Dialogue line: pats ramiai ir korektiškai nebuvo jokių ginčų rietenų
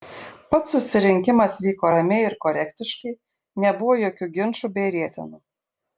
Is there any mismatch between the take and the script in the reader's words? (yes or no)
yes